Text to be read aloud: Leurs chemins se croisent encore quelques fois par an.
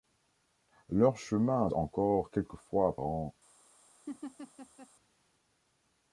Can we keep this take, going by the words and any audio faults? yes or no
no